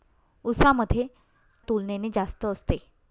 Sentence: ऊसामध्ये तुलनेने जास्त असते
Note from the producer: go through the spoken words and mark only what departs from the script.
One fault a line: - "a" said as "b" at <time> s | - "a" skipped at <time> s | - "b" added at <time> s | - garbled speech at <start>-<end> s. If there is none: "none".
none